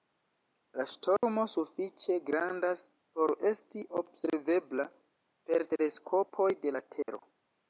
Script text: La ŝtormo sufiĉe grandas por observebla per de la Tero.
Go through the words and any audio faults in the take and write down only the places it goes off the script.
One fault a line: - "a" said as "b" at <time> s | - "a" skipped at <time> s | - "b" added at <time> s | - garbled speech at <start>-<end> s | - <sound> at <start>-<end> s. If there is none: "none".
- dropout at 1.2-1.2 s
- "esti" added at 3.5 s
- "teleskopoj" added at 5.8 s
- dropout at 7.0-7.1 s